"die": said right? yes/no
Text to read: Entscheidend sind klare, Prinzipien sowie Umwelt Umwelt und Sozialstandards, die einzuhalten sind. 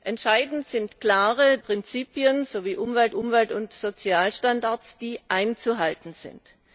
yes